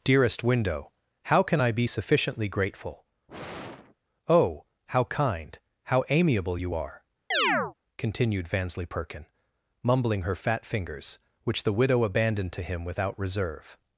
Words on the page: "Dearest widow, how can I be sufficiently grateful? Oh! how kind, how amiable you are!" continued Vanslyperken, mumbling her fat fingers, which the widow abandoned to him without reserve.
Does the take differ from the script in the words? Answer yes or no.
yes